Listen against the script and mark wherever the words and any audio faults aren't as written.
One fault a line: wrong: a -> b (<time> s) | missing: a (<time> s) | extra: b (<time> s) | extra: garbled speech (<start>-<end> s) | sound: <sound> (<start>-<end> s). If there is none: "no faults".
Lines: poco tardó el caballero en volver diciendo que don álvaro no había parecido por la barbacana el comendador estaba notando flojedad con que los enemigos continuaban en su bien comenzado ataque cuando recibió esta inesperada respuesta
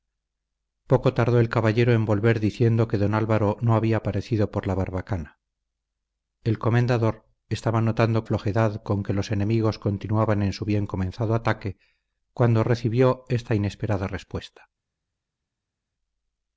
no faults